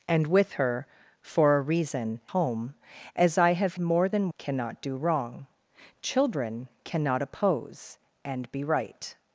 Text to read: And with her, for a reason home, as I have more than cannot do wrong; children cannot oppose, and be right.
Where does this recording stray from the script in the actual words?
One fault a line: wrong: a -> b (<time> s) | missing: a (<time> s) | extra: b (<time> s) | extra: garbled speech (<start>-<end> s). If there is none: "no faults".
no faults